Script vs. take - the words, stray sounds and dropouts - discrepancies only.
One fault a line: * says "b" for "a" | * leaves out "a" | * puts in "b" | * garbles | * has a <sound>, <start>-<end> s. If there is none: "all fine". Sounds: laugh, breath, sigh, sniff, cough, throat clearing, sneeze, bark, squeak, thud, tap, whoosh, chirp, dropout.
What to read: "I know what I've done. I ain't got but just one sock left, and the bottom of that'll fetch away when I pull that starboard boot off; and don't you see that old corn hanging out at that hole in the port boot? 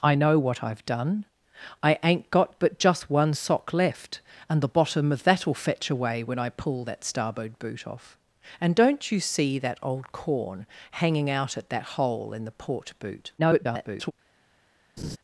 * garbles
* has a laugh, 15.0-15.2 s